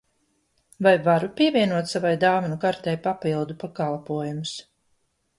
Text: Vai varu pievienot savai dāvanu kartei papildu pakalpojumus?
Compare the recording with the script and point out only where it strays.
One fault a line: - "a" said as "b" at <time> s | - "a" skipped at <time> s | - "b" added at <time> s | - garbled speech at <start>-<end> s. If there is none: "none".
none